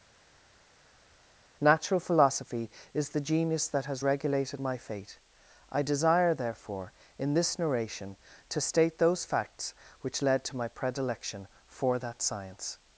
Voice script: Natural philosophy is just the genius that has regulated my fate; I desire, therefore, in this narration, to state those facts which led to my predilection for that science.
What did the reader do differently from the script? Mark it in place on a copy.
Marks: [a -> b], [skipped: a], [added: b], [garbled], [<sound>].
Natural philosophy is [skipped: just] the genius that has regulated my fate; I desire, therefore, in this narration, to state those facts which led to my predilection for that science.